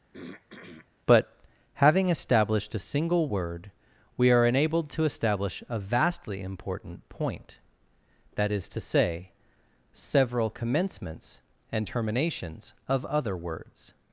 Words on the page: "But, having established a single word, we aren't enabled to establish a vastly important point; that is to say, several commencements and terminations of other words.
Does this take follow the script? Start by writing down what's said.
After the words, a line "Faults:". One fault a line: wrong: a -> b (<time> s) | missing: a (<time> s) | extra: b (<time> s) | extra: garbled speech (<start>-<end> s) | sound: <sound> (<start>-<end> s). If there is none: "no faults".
"But, having established a single word, we are enabled to establish a vastly important point; that is to say, several commencements and terminations of other words.
Faults:
sound: throat clearing (0.1-0.9 s)
wrong: aren't -> are (4.3 s)